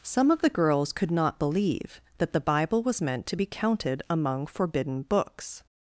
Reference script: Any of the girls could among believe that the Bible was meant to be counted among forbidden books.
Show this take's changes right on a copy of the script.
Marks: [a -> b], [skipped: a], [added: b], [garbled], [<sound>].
[Any -> Some] of the girls could [among -> not] believe that the Bible was meant to be counted among forbidden books.